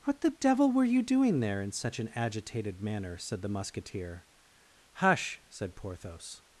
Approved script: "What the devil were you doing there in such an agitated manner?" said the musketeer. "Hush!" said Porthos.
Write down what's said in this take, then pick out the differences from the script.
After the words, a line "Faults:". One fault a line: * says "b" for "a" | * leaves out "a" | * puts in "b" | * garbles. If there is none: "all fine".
"What the devil were you doing there in such an agitated manner?" said the musketeer. "Hush!" said Porthos.
Faults:
all fine